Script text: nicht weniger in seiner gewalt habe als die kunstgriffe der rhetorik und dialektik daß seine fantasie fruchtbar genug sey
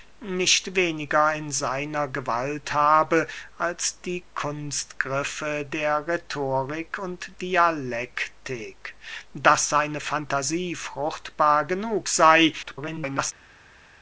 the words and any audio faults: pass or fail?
fail